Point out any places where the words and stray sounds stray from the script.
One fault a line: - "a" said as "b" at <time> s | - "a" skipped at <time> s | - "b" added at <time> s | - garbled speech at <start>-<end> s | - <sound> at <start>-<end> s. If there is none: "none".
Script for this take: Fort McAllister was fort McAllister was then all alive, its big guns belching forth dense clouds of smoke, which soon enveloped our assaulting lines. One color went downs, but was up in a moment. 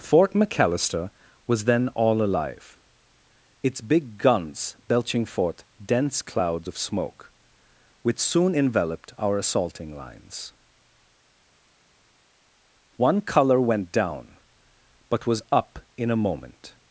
- "fort McAllister was" skipped at 1.6 s
- "downs" said as "down" at 13.9 s